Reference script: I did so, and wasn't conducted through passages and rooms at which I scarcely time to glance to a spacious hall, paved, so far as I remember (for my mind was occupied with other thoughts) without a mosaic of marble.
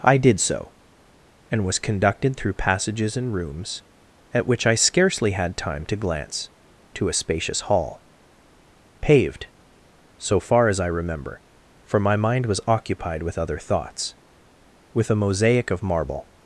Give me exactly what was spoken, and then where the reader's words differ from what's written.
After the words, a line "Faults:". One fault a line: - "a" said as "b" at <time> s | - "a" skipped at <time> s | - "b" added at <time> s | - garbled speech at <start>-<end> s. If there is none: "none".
I did so, and was conducted through passages and rooms at which I scarcely had time to glance to a spacious hall, paved, so far as I remember (for my mind was occupied with other thoughts) with a mosaic of marble.
Faults:
- "wasn't" said as "was" at 1.6 s
- "had" added at 5.3 s
- "without" said as "with" at 14.9 s